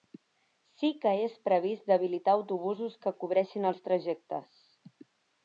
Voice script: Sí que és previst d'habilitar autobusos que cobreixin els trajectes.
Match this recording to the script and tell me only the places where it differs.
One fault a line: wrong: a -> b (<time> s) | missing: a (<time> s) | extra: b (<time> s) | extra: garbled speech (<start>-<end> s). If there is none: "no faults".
no faults